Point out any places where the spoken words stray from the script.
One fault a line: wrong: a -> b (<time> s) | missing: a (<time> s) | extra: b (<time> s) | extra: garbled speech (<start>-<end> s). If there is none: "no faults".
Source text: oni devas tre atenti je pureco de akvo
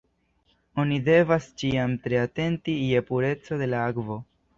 extra: ĉiam (1.6 s)
extra: la (3.7 s)